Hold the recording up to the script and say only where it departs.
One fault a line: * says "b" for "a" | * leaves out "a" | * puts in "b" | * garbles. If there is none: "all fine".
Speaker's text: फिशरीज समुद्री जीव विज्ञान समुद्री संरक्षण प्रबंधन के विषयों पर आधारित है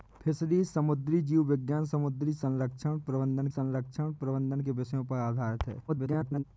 * puts in "संरक्षण प्रबंधन"
* garbles